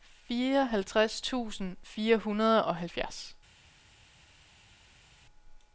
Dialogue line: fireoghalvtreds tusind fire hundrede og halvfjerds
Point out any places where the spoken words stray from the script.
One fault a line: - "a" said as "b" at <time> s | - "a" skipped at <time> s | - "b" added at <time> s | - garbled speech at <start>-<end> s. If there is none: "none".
none